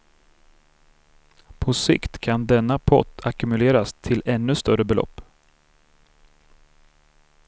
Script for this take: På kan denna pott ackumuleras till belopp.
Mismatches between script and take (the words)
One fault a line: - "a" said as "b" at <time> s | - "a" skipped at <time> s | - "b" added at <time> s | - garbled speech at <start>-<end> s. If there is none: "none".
- "sikt" added at 1.7 s
- "ännu större" added at 4.3 s